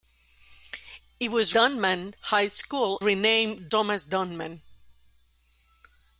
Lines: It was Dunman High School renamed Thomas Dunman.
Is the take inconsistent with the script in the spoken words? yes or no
no